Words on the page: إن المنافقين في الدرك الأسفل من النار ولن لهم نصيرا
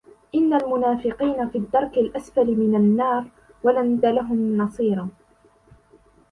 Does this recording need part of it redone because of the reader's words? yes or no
no